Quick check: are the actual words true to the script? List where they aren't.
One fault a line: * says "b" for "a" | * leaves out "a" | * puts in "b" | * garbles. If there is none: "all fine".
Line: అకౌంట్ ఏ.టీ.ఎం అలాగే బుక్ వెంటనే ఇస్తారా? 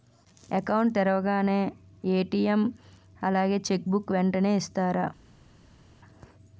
* puts in "తెరవగానే"
* puts in "చెక్"